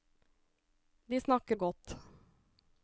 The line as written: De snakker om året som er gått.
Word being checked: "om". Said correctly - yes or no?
no